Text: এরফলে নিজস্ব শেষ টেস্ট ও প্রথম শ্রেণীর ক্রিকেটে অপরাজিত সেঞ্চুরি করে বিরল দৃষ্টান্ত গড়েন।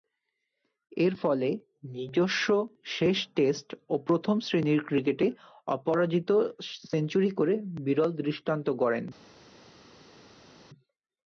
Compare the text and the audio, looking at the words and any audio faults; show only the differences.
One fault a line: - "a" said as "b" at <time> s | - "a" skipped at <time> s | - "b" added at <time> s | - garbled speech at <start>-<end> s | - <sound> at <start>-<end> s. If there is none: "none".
none